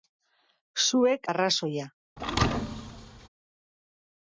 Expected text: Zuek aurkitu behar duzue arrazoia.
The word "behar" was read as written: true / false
false